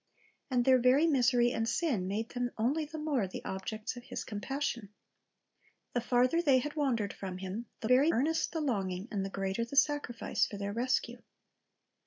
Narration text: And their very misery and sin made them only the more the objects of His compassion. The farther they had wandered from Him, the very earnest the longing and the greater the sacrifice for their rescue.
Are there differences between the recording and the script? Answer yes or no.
no